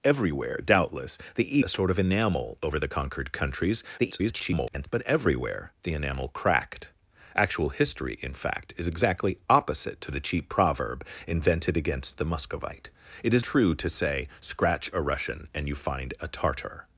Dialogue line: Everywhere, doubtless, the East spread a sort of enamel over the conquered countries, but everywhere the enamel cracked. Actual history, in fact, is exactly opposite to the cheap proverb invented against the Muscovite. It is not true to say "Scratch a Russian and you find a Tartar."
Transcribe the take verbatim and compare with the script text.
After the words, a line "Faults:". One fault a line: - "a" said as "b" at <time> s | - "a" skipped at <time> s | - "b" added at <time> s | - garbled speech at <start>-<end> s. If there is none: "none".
Everywhere, doubtless, the A sort of enamel over the conquered countries, [garbled] but everywhere the enamel cracked. Actual history, in fact, is exactly opposite to the cheap proverb invented against the Muscovite. It is true to say "Scratch a Russian and you find a Tartar."
Faults:
- "East spread" skipped at 1.6 s
- garbled speech at 4.0-4.9 s
- "not" skipped at 13.4 s